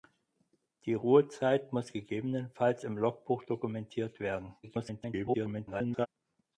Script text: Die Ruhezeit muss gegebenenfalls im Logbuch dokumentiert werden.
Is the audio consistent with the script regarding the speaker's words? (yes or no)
no